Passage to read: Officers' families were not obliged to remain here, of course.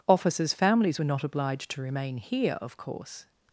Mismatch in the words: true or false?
false